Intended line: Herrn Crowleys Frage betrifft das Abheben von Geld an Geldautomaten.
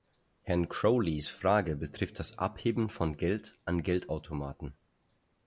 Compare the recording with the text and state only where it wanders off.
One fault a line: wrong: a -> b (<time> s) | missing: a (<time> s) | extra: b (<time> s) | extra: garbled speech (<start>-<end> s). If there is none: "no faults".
no faults